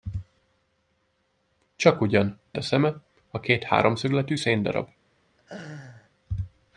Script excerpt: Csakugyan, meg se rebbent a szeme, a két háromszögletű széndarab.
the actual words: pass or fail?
fail